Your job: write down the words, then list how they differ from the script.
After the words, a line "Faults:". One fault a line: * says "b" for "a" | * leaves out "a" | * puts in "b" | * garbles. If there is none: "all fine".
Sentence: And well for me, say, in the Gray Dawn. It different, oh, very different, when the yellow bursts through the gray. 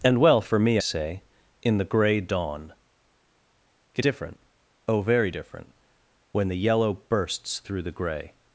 And well for me, say, in the Gray Dawn. It different, oh, very different, when the yellow bursts through the gray.
Faults:
all fine